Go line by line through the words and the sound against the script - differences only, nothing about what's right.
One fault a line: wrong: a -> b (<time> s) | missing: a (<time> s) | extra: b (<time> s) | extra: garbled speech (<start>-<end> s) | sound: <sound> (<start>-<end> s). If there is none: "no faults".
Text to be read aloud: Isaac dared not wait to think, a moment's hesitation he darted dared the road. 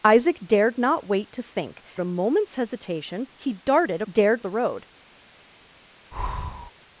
sound: breath (6.1-6.7 s)